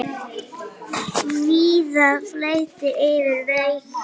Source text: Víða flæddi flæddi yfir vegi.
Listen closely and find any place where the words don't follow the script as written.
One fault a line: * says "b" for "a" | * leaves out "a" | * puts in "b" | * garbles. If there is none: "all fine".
* leaves out "flæddi"